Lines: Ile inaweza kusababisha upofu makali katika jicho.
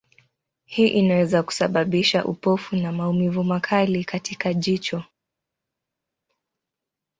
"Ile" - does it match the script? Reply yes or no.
no